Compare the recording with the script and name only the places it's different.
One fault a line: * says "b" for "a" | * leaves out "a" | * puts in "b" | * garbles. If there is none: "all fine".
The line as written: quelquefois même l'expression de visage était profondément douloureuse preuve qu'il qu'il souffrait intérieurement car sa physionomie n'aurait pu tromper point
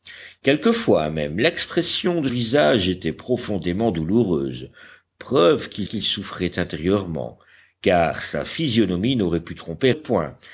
all fine